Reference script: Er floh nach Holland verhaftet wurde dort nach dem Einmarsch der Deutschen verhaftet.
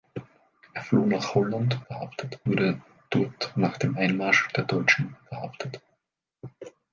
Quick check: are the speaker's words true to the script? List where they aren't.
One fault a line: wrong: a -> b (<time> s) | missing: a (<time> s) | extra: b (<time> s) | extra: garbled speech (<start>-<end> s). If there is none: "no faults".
no faults